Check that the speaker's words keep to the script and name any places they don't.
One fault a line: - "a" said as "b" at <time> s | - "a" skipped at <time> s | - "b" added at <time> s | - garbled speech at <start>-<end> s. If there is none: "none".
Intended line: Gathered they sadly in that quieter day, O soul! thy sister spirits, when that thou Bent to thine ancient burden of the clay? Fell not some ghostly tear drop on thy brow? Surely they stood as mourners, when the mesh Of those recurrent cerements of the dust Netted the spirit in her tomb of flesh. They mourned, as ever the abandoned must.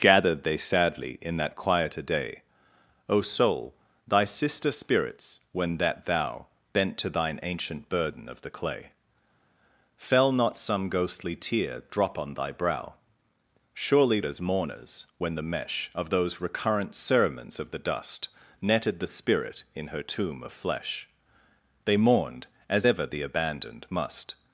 - "they stood" skipped at 14.2 s